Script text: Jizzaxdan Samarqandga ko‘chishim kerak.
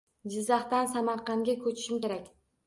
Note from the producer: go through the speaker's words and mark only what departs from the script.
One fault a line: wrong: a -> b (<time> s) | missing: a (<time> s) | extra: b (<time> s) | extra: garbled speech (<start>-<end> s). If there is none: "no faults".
no faults